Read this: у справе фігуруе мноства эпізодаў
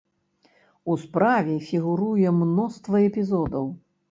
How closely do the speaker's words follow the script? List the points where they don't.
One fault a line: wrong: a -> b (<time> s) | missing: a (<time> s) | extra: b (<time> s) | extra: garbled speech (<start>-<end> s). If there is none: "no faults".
no faults